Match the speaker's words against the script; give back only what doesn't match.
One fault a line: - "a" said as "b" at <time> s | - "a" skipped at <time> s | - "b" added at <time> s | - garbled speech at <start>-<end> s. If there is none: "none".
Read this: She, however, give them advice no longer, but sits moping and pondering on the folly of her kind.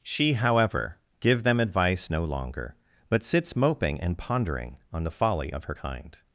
none